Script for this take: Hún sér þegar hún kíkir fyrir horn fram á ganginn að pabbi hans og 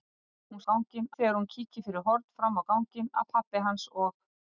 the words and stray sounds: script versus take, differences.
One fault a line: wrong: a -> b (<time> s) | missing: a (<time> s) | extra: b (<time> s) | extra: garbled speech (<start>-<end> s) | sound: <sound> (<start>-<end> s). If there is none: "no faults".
wrong: sér -> ganginn (0.7 s)